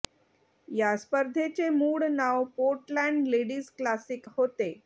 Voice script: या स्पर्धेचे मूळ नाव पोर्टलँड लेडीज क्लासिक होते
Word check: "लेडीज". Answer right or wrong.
right